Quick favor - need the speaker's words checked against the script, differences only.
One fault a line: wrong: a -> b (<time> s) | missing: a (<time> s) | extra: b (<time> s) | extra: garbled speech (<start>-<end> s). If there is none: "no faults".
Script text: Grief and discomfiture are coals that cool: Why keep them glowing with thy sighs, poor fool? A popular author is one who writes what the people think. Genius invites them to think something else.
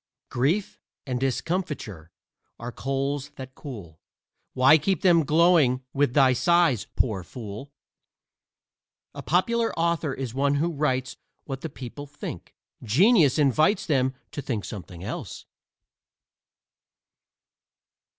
no faults